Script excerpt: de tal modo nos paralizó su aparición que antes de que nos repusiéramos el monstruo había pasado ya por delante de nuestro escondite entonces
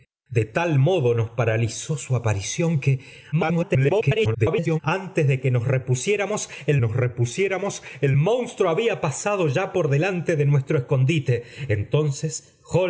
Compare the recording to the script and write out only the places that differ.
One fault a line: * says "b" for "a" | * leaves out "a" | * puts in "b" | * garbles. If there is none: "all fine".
* garbles
* puts in "nos repusiéramos el"